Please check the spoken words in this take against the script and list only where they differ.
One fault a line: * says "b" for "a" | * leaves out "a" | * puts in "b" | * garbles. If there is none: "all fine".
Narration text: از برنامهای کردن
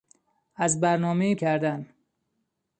all fine